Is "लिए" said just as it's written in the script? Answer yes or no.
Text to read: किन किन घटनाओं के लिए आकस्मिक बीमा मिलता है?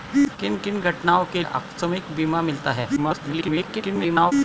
no